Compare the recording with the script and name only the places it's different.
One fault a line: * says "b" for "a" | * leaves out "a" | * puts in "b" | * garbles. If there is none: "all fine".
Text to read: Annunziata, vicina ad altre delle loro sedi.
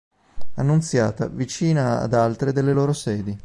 all fine